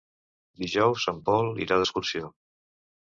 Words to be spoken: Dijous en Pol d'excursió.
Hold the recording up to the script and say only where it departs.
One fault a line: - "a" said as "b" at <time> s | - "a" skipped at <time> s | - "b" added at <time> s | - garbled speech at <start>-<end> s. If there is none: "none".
- "irà" added at 1.7 s